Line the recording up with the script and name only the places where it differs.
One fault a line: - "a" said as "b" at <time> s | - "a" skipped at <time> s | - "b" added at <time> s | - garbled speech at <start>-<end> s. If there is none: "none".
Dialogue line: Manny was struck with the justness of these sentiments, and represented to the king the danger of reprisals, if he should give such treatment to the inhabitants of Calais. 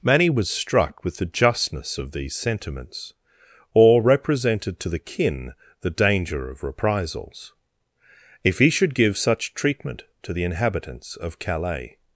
- "and" said as "or" at 3.7 s
- "king" said as "kin" at 5.0 s